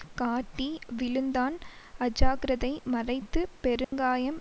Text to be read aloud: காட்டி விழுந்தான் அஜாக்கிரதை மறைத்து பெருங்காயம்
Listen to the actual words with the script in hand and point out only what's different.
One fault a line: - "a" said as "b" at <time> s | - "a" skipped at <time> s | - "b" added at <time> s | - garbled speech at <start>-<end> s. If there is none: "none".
none